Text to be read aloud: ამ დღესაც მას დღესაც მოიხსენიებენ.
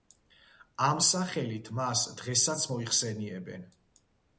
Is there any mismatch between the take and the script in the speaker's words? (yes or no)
yes